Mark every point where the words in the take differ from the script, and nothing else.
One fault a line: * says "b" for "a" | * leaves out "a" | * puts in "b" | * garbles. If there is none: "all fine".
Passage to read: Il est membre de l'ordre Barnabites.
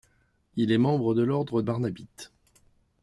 all fine